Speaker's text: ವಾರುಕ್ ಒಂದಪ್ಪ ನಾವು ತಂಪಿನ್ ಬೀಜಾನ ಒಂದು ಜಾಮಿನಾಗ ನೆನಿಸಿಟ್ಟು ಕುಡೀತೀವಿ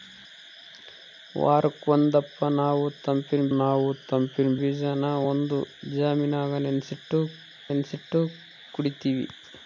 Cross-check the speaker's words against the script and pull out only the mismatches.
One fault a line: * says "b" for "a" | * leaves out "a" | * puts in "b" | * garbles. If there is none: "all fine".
* puts in "ನಾವು ತಂಪಿನ್"
* puts in "ನೆನಿಸಿಟ್ಟು"